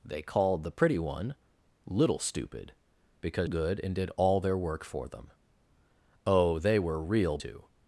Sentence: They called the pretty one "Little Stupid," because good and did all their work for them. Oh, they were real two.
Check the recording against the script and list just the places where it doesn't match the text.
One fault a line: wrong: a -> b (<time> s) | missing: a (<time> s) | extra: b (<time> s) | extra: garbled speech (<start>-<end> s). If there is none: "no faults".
no faults